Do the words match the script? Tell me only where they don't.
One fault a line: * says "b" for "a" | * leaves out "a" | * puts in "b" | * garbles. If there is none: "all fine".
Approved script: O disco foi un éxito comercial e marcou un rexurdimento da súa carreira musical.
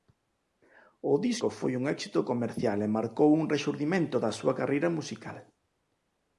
all fine